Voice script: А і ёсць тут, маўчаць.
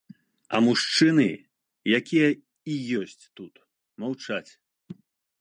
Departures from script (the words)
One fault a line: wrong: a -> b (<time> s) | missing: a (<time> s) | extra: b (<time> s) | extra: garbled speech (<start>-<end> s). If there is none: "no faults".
extra: мужчыны якія (0.7 s)